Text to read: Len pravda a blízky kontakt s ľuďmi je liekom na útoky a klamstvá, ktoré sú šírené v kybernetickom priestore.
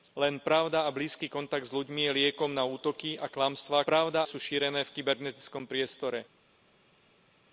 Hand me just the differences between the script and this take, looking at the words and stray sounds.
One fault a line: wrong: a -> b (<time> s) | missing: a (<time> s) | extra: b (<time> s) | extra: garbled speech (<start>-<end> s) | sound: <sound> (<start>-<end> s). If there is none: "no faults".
wrong: ktoré -> pravda (3.8 s)